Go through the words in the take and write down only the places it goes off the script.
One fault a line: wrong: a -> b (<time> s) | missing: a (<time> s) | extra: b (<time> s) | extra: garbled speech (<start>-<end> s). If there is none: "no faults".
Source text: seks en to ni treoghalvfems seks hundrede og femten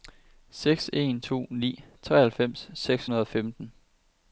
no faults